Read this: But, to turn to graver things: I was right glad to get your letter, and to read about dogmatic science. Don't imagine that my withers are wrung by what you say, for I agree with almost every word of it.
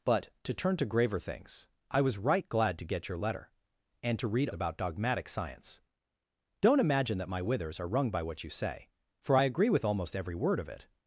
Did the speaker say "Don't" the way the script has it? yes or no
yes